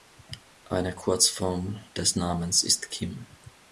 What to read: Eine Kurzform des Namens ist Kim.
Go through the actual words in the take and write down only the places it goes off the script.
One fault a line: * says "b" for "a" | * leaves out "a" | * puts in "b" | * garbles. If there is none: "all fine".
all fine